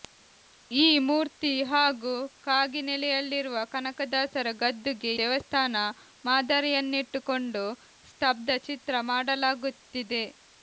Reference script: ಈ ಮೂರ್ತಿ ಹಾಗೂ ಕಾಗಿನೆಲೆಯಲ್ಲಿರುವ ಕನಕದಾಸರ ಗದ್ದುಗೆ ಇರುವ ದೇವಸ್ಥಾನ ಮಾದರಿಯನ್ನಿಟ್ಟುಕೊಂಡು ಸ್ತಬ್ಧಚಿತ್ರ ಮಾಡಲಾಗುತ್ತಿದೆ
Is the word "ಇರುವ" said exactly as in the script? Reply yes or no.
no